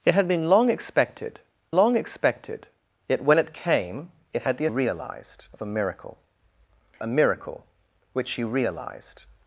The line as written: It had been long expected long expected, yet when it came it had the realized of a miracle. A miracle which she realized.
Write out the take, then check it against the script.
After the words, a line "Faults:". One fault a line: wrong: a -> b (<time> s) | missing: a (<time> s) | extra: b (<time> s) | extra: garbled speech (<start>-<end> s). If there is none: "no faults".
It had been long expected long expected, yet when it came it had the realized of a miracle. A miracle which she realized.
Faults:
no faults